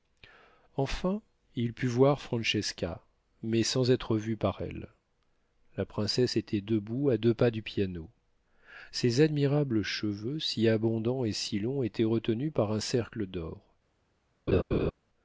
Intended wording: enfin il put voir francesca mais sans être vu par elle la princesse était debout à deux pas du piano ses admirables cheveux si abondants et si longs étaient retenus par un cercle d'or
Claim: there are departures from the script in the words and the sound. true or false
true